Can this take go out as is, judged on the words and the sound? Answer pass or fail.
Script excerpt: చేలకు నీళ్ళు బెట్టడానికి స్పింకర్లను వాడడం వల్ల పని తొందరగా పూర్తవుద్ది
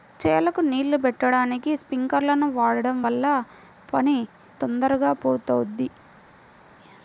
pass